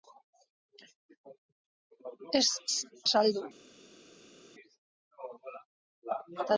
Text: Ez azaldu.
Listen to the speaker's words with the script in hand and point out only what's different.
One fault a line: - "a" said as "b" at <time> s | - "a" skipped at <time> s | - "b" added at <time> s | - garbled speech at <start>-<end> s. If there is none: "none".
none